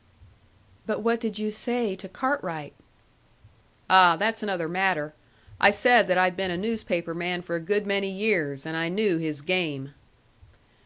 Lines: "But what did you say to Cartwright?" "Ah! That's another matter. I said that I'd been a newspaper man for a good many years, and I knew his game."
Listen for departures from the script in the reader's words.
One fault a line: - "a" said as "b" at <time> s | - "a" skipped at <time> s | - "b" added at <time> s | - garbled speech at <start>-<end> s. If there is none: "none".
none